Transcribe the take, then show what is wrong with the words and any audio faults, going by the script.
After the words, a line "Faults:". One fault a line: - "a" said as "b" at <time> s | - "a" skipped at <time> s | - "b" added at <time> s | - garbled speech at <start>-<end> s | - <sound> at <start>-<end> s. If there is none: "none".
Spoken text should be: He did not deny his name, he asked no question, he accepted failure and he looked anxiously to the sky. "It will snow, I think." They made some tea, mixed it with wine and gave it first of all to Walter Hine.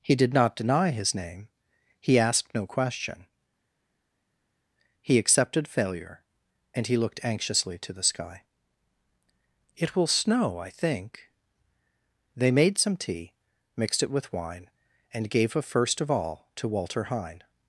He did not deny his name, he asked no question, he accepted failure and he looked anxiously to the sky. "It will snow, I think." They made some tea, mixed it with wine and gave a first of all to Walter Hine.
Faults:
- "it" said as "a" at 15.6 s